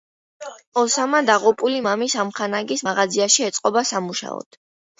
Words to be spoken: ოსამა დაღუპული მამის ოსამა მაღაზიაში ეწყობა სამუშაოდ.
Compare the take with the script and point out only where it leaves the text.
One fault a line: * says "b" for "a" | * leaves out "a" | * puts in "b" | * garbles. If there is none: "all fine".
* says "ამხანაგის" for "ოსამა"